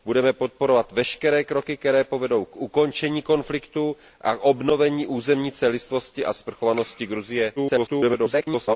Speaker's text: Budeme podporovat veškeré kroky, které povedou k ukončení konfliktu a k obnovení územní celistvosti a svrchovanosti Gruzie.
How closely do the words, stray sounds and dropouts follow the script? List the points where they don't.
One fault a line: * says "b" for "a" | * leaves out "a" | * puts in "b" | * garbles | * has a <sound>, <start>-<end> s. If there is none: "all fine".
* garbles